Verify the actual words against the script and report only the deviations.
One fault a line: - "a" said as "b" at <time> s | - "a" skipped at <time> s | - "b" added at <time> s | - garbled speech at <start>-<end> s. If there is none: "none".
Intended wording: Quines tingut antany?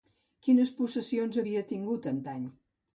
- "possessions havia" added at 0.8 s